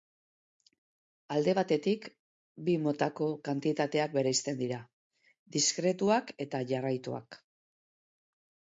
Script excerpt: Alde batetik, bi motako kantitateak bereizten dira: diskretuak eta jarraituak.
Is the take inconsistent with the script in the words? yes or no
no